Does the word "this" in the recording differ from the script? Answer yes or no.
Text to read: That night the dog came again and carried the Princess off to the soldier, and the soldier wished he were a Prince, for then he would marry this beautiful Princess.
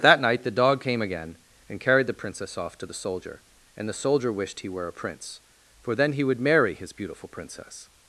yes